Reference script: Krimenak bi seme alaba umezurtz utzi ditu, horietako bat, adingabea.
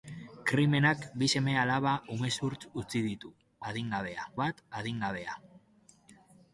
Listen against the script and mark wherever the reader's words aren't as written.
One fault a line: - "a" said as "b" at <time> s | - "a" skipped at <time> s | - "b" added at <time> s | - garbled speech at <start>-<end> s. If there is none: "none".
- "horietako" said as "adingabea" at 3.7 s